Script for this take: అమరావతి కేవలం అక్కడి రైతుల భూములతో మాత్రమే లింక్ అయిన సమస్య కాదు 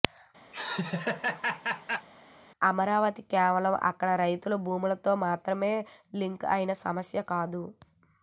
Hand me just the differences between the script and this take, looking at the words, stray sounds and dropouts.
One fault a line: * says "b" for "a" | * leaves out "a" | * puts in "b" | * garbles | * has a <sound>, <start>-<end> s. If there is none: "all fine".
* has a laugh, 0.5-2.1 s